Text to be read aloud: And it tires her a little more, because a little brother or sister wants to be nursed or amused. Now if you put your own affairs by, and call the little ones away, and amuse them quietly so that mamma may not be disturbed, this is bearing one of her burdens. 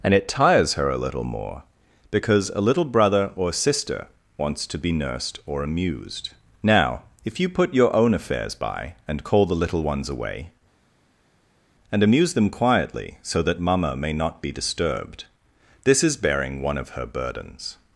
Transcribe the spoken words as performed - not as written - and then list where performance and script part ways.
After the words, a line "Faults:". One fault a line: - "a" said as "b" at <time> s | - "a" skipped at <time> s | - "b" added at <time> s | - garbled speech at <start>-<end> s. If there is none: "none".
And it tires her a little more, because a little brother or sister wants to be nursed or amused. Now if you put your own affairs by, and call the little ones away, and amuse them quietly so that mamma may not be disturbed, this is bearing one of her burdens.
Faults:
none